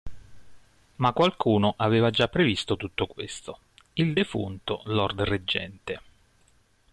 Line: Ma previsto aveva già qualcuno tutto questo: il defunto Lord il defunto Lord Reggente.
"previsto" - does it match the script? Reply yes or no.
no